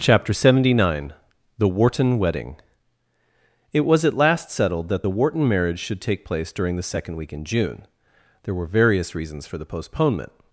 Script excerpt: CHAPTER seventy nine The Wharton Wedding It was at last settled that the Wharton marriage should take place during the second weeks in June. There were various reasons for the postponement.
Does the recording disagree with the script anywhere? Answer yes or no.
yes